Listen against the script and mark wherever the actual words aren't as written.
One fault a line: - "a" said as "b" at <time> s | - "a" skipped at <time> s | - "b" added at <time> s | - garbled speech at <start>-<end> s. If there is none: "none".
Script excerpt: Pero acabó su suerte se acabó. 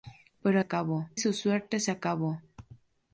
none